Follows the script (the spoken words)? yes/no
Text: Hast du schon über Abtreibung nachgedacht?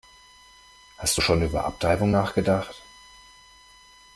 yes